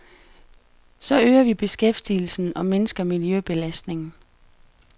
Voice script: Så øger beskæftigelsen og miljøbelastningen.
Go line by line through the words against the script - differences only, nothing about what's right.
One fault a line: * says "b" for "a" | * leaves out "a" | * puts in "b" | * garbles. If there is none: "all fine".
* puts in "vi"
* puts in "mindsker"